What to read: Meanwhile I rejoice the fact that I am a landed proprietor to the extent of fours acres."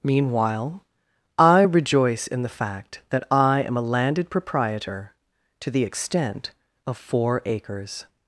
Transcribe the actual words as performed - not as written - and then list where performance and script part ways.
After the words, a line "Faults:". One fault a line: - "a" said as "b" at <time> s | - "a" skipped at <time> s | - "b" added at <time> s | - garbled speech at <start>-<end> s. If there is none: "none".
Meanwhile I rejoice in the fact that I am a landed proprietor to the extent of four acres."
Faults:
- "in" added at 2.3 s
- "fours" said as "four" at 7.0 s